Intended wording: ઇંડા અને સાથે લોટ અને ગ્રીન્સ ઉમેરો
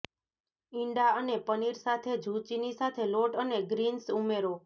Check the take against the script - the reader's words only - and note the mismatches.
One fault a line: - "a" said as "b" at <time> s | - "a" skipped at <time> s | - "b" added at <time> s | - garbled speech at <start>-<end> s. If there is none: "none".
- "પનીર સાથે ઝુચીની" added at 1.5 s